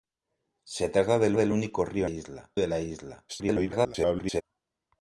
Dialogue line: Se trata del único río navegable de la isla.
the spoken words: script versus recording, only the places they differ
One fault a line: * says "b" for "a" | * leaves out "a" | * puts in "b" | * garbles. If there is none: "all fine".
* puts in "del"
* says "isla" for "navegable"
* garbles